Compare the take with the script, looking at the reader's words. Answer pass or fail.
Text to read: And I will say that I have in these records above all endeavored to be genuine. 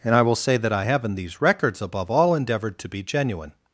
pass